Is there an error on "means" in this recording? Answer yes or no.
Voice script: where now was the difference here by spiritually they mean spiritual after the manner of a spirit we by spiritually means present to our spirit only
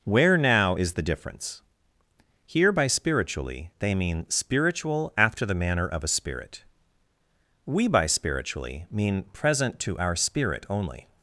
yes